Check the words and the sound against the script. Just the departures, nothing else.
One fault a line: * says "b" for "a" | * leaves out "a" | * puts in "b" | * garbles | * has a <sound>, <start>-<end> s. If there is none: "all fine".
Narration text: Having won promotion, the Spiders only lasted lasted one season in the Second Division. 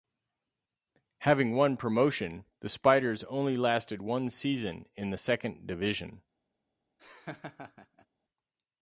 * leaves out "lasted"
* has a laugh, 7.0-8.1 s